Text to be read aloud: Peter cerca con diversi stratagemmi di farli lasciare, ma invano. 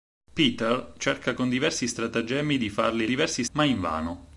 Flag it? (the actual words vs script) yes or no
yes